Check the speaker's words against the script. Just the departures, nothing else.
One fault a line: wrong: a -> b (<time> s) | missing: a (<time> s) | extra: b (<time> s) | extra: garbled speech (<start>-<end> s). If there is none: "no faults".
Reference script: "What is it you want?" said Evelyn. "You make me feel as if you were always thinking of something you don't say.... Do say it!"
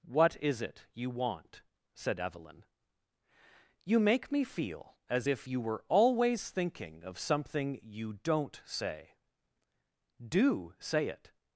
no faults